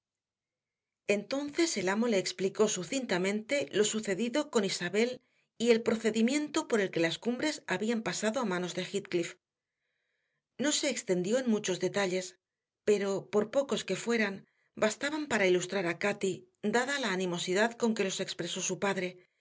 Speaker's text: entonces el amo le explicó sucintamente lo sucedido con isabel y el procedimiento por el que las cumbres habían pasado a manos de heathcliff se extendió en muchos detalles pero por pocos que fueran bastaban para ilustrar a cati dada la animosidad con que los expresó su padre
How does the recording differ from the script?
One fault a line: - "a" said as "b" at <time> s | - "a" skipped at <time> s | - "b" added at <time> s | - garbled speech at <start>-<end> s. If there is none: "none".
- "no" added at 10.6 s